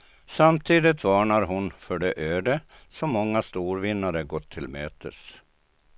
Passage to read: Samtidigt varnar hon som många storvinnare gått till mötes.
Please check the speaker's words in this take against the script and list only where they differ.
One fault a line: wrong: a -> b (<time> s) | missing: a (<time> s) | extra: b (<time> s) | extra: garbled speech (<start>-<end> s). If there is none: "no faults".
extra: för det öde (1.7 s)